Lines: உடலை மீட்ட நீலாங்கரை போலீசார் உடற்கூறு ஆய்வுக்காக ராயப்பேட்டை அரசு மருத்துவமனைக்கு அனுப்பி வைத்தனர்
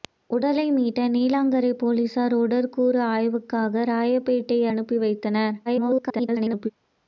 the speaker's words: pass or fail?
fail